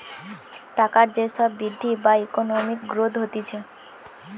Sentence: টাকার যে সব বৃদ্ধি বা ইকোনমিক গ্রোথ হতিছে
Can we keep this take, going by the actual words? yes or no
yes